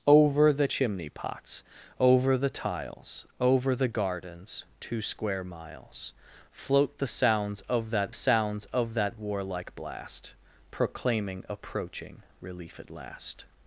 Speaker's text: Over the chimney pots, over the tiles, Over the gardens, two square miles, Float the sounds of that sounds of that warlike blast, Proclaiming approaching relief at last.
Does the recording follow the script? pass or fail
pass